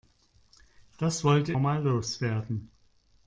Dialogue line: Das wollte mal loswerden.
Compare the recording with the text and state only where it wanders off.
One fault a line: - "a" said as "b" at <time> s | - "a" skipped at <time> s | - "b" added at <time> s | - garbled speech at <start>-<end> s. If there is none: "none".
none